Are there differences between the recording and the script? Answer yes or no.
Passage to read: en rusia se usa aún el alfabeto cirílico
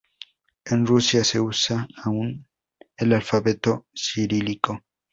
no